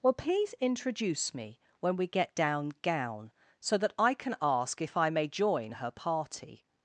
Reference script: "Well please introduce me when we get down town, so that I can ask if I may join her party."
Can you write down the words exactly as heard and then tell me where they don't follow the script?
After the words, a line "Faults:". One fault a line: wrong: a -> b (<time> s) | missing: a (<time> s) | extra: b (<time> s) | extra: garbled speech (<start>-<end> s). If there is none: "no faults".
"Well please introduce me when we get down gown, so that I can ask if I may join her party."
Faults:
wrong: town -> gown (2.8 s)